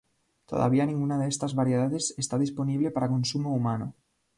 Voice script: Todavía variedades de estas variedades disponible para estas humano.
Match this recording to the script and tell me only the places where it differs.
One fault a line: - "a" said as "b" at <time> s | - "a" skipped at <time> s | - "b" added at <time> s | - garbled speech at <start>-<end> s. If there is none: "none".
- "variedades" said as "ninguna" at 0.9 s
- "está" added at 2.2 s
- "estas" said as "consumo" at 3.1 s